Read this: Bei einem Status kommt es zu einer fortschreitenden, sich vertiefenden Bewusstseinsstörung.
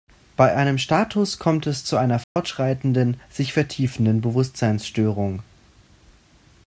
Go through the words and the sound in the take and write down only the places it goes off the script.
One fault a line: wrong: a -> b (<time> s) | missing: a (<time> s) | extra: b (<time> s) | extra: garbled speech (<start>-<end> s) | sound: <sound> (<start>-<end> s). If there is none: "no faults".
sound: dropout (2.2-2.4 s)